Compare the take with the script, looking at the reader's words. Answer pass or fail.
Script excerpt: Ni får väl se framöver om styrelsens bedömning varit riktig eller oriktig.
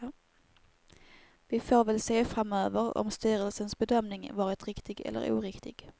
fail